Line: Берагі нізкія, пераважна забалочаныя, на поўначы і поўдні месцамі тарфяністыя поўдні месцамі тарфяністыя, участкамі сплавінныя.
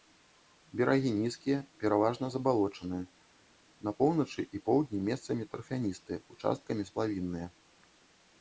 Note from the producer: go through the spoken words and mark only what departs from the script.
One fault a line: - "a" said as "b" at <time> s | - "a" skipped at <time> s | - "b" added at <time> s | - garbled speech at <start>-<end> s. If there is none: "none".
- "поўдні месцамі тарфяністыя" skipped at 6.2 s